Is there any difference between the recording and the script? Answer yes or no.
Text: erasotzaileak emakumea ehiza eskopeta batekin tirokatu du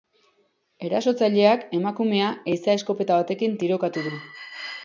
no